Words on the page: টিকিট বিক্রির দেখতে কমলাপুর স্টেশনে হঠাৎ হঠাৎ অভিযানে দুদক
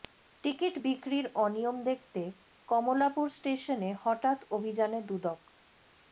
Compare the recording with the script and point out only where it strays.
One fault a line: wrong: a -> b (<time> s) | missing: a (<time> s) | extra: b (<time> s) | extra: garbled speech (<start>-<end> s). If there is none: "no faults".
extra: অনিয়ম (1.4 s)
missing: হঠাৎ (4.4 s)